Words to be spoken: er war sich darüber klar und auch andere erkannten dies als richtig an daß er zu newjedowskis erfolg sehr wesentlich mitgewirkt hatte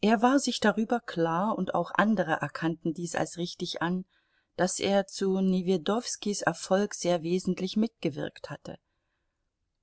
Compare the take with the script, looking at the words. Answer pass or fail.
pass